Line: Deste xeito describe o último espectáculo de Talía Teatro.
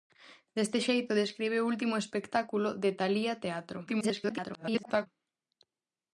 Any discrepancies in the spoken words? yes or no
yes